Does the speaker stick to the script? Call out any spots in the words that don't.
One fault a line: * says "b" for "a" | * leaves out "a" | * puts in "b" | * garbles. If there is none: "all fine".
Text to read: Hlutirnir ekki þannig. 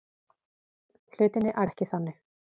all fine